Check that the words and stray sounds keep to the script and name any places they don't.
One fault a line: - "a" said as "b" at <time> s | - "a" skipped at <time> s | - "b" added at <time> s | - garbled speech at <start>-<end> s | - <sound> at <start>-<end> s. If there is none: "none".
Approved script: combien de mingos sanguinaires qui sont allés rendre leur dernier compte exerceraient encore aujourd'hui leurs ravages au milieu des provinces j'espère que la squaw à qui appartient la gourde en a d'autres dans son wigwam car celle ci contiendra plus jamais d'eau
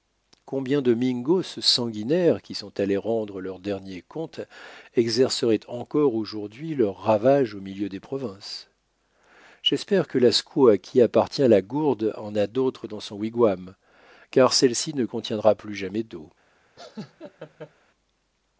- "ne" added at 14.9 s
- laugh at 16.8-17.7 s